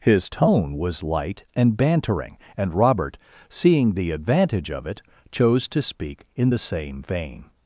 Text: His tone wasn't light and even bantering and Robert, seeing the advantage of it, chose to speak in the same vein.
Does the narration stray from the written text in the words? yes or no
yes